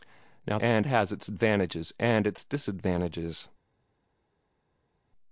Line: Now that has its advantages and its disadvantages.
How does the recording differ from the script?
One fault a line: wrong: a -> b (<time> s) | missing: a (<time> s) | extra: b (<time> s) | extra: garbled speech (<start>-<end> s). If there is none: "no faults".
wrong: that -> and (0.6 s)